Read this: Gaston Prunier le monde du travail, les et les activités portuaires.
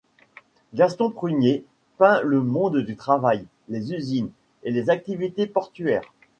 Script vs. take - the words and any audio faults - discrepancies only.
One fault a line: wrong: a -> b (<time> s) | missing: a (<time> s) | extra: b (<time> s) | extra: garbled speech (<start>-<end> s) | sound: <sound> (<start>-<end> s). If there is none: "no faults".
extra: peint (2.0 s)
extra: usines (3.9 s)